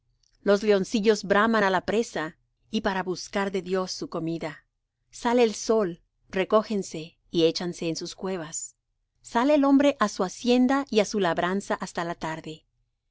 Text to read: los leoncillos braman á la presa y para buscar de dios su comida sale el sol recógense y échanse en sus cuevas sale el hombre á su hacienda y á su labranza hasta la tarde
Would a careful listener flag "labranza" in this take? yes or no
no